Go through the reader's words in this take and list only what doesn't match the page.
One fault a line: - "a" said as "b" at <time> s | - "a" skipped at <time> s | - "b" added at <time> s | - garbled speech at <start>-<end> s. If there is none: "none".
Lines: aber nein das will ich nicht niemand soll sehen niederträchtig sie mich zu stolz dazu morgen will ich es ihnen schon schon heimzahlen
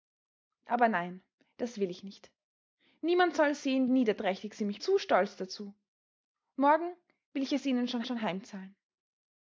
none